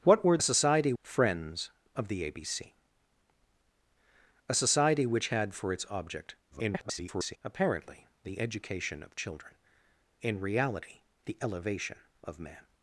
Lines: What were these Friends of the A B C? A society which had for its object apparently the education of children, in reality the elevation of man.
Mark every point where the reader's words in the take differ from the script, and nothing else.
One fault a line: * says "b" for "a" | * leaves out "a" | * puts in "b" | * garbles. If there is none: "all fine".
* says "society" for "these"
* garbles